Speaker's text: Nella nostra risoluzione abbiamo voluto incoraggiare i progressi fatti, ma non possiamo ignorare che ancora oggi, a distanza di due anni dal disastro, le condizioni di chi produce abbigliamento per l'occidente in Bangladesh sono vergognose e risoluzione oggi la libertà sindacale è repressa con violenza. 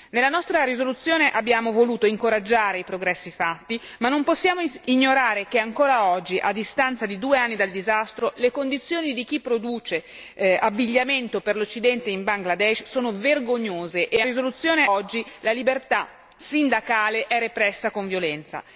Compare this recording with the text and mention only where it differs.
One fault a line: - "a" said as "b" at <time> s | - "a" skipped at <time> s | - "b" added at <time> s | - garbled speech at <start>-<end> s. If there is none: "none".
none